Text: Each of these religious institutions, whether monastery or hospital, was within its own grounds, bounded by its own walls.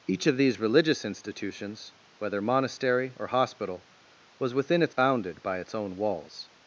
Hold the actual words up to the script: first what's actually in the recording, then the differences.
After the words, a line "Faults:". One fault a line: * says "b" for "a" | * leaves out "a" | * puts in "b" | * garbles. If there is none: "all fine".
Each of these religious institutions, whether monastery or hospital, was within its bounded by its own walls.
Faults:
* leaves out "own grounds"